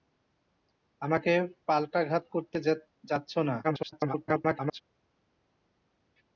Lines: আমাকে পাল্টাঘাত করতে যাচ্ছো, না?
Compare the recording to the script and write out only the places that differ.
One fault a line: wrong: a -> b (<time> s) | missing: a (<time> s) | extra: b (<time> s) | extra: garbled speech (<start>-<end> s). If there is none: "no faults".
extra: garbled speech (3.6-4.8 s)